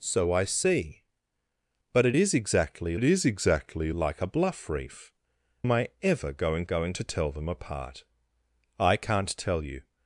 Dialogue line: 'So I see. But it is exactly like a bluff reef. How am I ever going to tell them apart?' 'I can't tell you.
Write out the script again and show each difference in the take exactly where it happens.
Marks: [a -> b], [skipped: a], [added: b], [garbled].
'So I see. But it is exactly [added: it is exactly] like a bluff reef. [skipped: How] am I ever going [added: going] to tell them apart?' 'I can't tell you.